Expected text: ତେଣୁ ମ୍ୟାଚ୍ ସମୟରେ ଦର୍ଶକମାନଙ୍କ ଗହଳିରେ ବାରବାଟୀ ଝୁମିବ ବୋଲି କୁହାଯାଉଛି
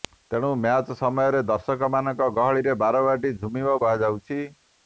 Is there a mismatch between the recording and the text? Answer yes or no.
yes